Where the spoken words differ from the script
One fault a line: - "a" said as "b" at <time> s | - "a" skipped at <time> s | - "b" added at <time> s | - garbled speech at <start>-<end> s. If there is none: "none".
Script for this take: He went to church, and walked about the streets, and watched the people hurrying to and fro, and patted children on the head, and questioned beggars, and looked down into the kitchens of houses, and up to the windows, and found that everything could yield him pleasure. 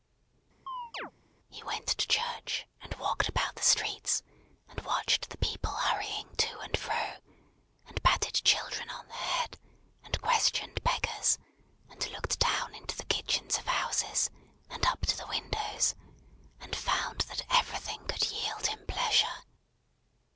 none